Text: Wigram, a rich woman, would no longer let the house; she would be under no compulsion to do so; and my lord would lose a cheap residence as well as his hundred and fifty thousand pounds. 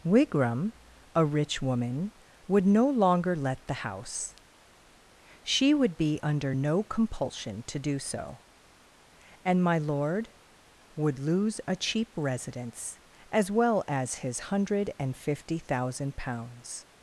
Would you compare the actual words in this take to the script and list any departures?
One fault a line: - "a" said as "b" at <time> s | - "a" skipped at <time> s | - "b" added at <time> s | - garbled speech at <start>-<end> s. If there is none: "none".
none